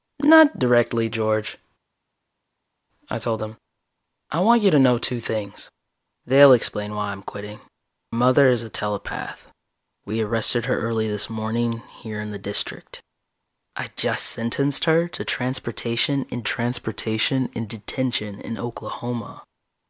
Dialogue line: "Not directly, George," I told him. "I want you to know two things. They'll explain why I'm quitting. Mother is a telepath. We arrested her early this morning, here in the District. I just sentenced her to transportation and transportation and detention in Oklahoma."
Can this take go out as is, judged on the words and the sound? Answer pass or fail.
pass